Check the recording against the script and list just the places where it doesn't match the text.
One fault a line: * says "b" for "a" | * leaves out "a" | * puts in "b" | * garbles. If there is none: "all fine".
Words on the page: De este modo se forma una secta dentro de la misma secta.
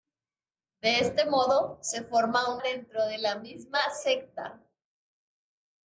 * leaves out "una secta"